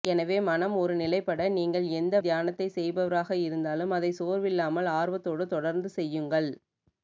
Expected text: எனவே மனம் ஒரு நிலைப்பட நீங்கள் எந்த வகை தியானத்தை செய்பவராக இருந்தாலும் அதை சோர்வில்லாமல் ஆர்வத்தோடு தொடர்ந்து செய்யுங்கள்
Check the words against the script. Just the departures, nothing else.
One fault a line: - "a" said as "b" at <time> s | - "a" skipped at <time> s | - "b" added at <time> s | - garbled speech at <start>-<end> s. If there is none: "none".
- "வகை" skipped at 2.1 s